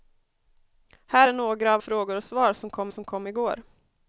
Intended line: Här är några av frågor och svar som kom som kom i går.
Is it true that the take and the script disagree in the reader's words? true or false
false